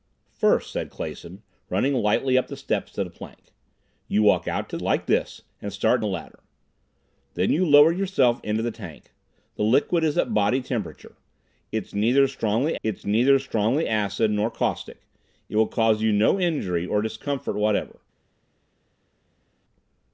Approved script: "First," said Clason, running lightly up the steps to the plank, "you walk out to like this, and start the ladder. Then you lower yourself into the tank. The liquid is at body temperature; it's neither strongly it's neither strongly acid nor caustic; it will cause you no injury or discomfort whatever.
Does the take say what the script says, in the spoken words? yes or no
yes